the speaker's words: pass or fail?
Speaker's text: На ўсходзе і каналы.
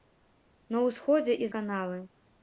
pass